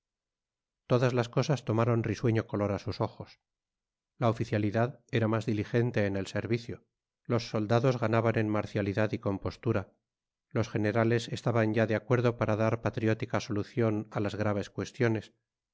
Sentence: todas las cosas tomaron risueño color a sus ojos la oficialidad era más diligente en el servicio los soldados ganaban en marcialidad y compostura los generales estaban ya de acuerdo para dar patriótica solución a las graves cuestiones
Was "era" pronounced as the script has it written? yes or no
yes